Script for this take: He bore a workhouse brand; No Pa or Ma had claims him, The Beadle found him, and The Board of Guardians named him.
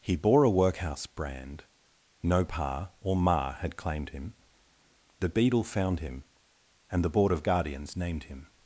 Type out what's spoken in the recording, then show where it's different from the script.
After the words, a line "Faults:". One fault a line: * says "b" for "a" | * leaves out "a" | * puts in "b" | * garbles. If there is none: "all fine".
He bore a workhouse brand; No Pa or Ma had claimed him, The Beadle found him, and The Board of Guardians named him.
Faults:
* says "claimed" for "claims"